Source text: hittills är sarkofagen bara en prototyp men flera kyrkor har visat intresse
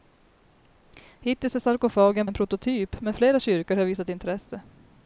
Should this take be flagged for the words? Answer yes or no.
yes